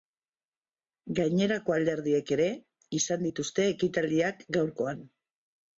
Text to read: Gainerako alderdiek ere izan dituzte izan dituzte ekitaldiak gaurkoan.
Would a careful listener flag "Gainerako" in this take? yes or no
no